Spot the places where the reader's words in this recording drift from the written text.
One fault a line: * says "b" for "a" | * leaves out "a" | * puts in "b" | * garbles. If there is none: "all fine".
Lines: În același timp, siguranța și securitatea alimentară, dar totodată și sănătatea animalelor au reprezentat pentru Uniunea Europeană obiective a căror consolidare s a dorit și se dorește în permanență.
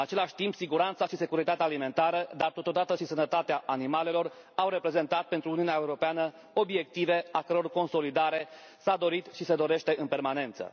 all fine